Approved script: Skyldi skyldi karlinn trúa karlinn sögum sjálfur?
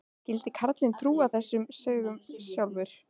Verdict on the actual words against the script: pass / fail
fail